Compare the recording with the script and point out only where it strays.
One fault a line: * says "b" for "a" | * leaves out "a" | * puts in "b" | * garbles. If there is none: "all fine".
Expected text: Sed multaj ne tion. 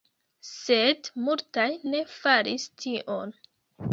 * puts in "faris"